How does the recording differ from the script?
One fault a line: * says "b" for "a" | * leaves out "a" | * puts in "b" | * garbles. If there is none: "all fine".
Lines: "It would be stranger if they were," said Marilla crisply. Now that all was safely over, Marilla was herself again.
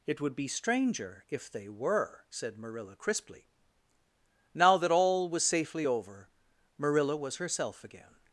all fine